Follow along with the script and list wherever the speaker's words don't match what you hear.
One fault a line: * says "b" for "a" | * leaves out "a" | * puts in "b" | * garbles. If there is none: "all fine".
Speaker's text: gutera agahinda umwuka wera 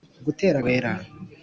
* leaves out "agahinda umwuka"